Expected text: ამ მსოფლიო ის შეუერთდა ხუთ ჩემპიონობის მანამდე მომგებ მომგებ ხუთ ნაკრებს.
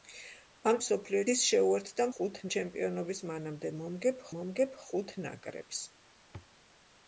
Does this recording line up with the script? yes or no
yes